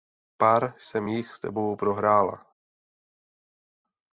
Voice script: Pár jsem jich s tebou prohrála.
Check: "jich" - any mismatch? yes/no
no